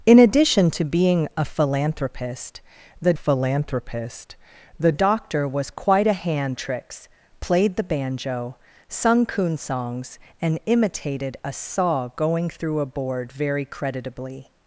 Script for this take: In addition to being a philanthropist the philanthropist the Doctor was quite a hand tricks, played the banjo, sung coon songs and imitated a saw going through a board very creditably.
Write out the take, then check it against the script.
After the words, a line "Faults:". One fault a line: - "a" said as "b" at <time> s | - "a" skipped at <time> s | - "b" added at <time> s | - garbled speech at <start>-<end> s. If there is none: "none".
In addition to being a philanthropist the philanthropist the Doctor was quite a hand tricks, played the banjo, sung coon songs and imitated a saw going through a board very creditably.
Faults:
none